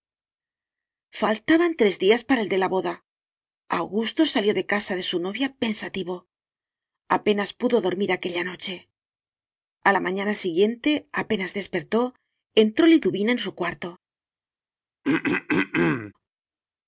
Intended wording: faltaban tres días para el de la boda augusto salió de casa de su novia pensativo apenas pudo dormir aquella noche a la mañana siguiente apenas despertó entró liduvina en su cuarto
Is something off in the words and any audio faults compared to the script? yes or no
yes